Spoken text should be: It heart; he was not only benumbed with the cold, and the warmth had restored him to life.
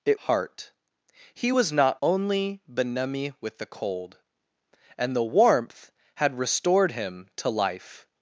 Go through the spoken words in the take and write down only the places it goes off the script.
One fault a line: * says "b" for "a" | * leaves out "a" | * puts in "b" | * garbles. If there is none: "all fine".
all fine